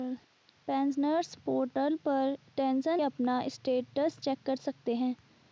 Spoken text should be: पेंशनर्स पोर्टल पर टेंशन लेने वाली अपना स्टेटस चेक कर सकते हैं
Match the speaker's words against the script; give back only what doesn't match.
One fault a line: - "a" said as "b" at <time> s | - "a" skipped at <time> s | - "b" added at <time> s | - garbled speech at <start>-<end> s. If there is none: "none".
- "लेने वाली" skipped at 3.0 s